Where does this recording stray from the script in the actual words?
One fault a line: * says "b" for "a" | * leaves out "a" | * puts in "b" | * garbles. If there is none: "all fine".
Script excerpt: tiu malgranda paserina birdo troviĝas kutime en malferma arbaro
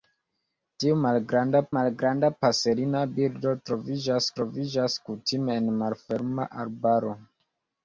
* puts in "malgranda"
* puts in "troviĝas"